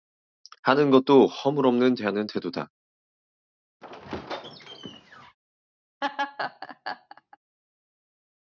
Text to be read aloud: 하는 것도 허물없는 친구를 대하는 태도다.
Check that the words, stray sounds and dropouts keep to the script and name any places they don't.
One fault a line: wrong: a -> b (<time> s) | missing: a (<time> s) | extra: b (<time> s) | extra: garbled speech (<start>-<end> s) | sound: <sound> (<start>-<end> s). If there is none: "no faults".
missing: 친구를 (1.9 s)
sound: squeak (3.8-5.4 s)
sound: laugh (6.0-7.4 s)